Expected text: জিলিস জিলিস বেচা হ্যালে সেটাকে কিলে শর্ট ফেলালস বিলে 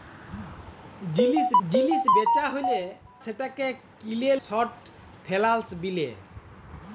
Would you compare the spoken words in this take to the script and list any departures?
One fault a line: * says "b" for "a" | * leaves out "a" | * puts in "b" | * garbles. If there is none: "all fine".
all fine